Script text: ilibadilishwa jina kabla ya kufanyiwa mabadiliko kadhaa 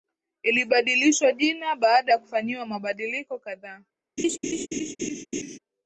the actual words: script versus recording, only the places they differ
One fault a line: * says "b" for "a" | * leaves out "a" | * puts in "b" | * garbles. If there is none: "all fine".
* says "baada" for "kabla"